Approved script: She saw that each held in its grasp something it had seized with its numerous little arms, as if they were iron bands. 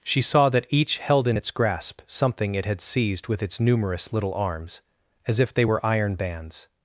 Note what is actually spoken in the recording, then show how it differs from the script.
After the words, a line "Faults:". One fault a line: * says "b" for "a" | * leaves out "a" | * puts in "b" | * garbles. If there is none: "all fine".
She saw that each held in its grasp something it had seized with its numerous little arms, as if they were iron bands.
Faults:
all fine